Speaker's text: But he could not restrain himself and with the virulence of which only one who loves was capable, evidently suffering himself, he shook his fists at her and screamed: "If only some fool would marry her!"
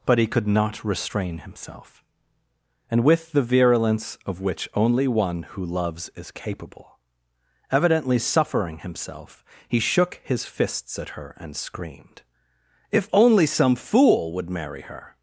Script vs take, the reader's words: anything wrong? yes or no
yes